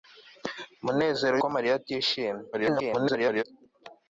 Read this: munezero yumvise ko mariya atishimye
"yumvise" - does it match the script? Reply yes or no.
no